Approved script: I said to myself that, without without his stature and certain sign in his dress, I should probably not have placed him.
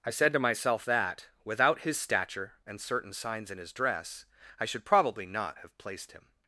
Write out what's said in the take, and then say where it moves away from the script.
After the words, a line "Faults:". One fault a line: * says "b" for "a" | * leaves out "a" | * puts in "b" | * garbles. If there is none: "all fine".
I said to myself that, without his stature and certain signs in his dress, I should probably not have placed him.
Faults:
* leaves out "without"
* says "signs" for "sign"